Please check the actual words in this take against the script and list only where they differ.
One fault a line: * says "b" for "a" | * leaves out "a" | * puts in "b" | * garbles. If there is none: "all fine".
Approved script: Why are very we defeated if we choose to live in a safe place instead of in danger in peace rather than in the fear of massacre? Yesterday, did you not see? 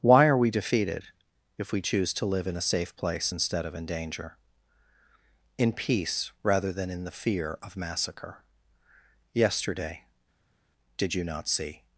* leaves out "very"